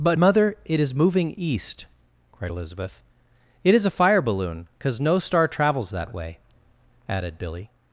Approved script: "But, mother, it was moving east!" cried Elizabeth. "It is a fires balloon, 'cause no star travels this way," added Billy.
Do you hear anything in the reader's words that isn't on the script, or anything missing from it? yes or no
yes